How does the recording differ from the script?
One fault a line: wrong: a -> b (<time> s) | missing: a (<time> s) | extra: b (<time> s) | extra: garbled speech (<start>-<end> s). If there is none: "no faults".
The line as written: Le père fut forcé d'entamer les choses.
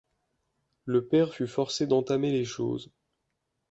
no faults